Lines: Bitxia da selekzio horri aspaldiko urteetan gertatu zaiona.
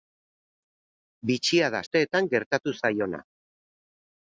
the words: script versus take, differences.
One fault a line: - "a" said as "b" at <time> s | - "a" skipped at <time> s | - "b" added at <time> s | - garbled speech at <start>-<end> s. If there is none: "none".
- "selekzio horri aspaldiko" skipped at 1.8 s